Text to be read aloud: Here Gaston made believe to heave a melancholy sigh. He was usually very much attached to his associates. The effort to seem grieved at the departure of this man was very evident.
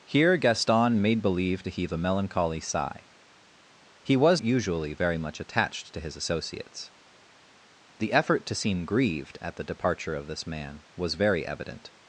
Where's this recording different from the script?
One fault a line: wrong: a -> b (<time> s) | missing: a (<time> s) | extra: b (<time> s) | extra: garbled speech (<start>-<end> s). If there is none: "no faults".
no faults